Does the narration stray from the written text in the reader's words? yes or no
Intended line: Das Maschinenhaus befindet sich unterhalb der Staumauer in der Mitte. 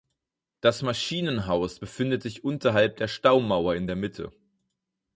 no